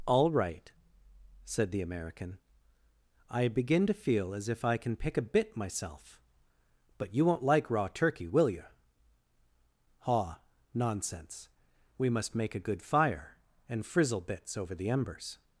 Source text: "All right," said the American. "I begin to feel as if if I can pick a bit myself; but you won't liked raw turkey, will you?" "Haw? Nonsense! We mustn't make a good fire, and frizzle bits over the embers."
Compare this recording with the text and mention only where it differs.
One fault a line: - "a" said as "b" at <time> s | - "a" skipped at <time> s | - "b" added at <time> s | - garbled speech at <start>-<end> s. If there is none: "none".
- "if" skipped at 4.7 s
- "liked" said as "like" at 7.4 s
- "mustn't" said as "must" at 12.1 s